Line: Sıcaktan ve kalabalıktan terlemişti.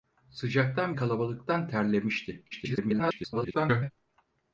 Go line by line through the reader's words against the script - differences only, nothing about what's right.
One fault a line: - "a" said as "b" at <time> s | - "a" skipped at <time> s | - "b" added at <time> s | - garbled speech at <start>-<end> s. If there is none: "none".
- "ve" skipped at 0.9 s
- garbled speech at 2.5-3.9 s